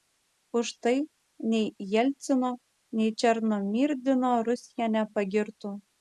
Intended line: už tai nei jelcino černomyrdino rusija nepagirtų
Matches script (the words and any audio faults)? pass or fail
fail